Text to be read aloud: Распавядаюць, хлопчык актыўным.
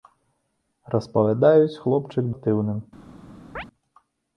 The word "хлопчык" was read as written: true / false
true